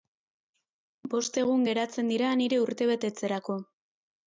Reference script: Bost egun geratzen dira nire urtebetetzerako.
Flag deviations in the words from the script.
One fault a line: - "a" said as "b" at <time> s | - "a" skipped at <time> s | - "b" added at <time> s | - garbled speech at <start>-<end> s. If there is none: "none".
none